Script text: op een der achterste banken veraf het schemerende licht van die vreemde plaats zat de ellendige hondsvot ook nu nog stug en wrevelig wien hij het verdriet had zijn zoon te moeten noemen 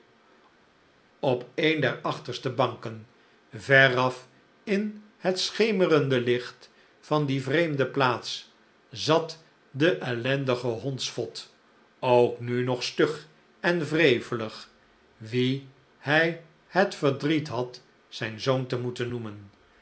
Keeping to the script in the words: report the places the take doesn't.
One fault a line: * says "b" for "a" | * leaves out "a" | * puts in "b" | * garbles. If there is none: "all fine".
* puts in "in"